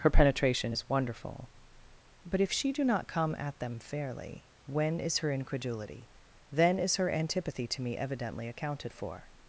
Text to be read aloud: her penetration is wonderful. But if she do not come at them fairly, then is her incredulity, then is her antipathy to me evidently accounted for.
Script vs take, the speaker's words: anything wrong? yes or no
yes